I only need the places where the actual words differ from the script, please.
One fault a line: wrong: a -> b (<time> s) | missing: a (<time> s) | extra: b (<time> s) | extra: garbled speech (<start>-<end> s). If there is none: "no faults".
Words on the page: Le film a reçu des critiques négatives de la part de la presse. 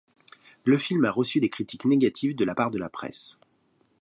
no faults